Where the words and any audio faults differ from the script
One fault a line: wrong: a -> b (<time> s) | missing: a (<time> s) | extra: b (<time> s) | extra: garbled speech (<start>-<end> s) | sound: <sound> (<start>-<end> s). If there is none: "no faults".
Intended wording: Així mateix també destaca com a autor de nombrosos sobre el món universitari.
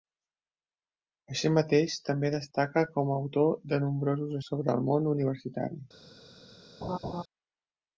sound: laugh (6.8-7.2 s)